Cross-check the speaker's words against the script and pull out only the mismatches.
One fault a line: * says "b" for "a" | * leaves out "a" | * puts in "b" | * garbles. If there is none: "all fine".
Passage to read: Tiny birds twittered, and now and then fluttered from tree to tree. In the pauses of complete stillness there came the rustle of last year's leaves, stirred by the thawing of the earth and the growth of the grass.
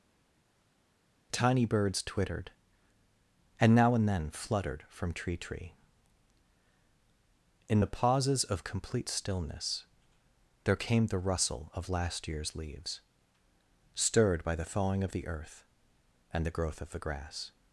* leaves out "to"